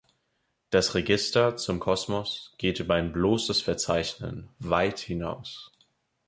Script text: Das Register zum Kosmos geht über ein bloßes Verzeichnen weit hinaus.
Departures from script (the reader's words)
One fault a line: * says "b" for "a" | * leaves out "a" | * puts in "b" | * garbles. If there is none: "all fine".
all fine